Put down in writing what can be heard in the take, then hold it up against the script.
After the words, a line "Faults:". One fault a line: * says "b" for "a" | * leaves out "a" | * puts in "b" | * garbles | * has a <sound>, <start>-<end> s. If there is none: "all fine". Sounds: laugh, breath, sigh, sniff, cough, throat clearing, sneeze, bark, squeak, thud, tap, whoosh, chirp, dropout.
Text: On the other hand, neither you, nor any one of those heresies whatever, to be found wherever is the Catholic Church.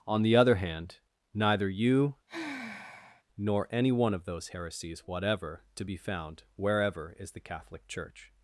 On the other hand, neither you, nor any one of those heresies whatever, to be found wherever is the Catholic Church.
Faults:
* has a sigh, 2.3-3.2 s